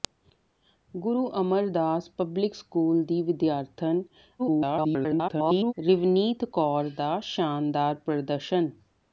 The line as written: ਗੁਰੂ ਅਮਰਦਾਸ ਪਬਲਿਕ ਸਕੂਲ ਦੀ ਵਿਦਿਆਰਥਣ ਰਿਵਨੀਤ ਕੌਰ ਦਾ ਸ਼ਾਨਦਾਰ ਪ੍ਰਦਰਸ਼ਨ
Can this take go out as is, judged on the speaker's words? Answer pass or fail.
fail